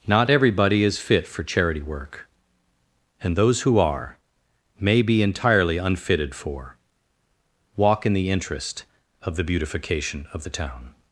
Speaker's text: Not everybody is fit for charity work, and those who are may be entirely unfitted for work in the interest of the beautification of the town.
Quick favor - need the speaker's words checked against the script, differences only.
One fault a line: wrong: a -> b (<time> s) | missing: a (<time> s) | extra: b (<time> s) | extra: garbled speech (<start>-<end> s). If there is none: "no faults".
wrong: work -> walk (7.8 s)